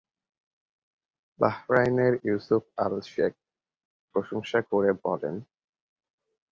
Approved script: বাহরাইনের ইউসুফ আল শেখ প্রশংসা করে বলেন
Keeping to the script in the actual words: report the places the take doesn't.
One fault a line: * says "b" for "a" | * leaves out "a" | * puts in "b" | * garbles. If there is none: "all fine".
all fine